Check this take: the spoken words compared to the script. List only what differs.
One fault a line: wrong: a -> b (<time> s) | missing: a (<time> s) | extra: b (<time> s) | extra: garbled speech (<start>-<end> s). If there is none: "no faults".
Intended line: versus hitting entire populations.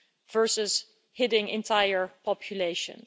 no faults